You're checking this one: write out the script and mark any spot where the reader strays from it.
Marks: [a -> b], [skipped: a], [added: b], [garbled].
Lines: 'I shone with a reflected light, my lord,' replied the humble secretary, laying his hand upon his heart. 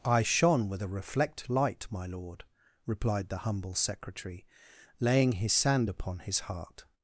'I shone with a [reflected -> reflect] light, my lord,' replied the humble secretary, laying his [hand -> sand] upon his heart.